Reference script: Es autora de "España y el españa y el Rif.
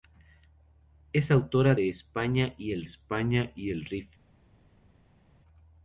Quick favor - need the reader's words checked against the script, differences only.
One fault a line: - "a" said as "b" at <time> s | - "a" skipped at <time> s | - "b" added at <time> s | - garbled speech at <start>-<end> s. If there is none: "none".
none